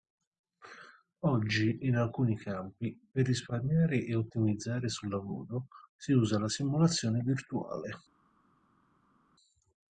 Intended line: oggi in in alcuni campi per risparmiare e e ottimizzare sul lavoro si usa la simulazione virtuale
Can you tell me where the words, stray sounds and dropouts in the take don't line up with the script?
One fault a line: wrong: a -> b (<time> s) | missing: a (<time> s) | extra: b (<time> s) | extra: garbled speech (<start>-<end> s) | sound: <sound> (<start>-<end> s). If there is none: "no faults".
missing: in (1.9 s)
missing: e (4.2 s)